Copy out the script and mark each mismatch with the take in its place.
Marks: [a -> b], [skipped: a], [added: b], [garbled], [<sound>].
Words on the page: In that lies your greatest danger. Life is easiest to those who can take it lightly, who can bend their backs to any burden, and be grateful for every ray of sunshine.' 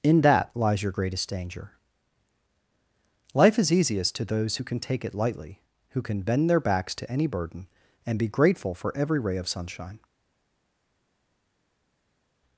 In that lies your greatest danger. Life is easiest to those who can take it lightly, who can bend their backs to any burden, and be grateful for every ray of sunshine.'